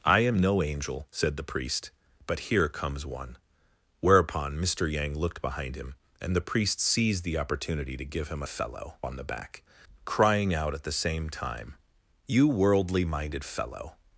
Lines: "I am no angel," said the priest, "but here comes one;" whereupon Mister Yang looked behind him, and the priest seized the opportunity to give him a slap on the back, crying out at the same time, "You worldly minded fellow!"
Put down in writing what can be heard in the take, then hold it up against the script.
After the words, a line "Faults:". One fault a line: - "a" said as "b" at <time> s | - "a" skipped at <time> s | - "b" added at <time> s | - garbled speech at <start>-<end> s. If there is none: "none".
"I am no angel," said the priest, "but here comes one;" whereupon Mister Yang looked behind him, and the priest seized the opportunity to give him a fellow on the back, crying out at the same time, "You worldly minded fellow!"
Faults:
- "slap" said as "fellow" at 8.5 s